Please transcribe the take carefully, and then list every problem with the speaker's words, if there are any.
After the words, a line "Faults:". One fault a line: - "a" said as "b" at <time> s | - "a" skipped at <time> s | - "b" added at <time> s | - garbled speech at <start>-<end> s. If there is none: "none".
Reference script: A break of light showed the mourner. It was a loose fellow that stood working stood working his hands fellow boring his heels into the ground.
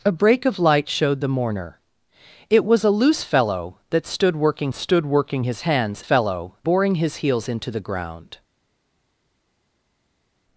A break of light showed the mourner. It was a loose fellow that stood working stood working his hands fellow boring his heels into the ground.
Faults:
none